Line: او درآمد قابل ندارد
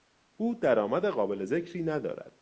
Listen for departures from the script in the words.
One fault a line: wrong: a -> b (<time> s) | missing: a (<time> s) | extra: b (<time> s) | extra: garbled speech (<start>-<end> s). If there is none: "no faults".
extra: ذکری (1.4 s)